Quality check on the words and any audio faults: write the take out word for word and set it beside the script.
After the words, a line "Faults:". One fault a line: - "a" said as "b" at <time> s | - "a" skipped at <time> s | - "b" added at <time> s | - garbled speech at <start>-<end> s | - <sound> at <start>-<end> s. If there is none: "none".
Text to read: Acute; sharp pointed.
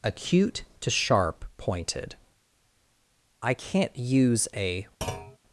Acute; to sharp pointed. I can't use a
Faults:
- "to" added at 0.8 s
- "I can't use a" added at 3.4 s
- thud at 5.0-5.4 s